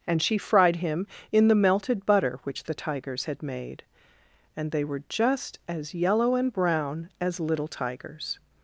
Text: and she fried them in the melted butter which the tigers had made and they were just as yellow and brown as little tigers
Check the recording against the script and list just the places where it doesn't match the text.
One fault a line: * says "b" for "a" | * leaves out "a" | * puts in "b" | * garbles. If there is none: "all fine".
* says "him" for "them"